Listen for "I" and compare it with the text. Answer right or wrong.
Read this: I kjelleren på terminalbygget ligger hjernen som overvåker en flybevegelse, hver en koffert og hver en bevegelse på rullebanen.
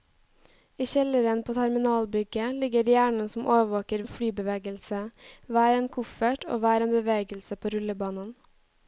right